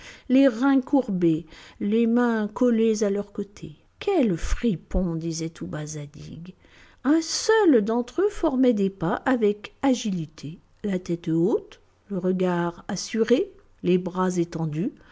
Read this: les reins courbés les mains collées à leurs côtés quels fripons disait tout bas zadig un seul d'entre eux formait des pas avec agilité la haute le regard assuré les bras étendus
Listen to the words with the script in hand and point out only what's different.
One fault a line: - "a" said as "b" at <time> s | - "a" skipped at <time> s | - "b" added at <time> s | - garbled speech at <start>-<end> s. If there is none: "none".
- "tête" added at 11.0 s